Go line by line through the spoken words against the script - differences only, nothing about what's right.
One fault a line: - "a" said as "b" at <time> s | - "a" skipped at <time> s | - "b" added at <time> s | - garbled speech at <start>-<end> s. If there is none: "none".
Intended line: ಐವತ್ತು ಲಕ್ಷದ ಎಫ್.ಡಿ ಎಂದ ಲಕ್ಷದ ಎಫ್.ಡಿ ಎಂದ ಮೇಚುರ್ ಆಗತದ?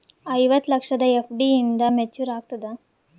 - "ಲಕ್ಷದ ಎಫ್.ಡಿ ಎಂದ" skipped at 1.8 s